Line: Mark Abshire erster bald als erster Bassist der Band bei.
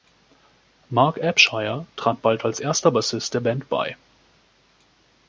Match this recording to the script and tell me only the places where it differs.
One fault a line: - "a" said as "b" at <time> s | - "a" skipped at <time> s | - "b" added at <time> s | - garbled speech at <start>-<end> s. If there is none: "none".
- "erster" said as "trat" at 1.9 s